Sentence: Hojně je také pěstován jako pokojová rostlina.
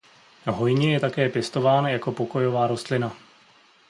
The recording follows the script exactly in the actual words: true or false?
true